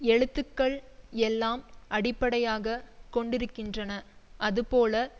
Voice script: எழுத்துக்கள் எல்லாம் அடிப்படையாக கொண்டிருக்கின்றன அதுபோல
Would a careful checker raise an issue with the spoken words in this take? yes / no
no